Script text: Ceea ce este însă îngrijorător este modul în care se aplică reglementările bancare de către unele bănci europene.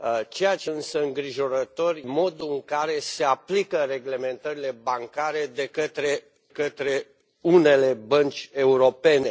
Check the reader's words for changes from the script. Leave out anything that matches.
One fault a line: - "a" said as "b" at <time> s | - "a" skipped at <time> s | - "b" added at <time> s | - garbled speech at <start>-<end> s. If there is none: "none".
- "este" skipped at 0.7 s
- "este" skipped at 2.0 s
- "către" added at 6.5 s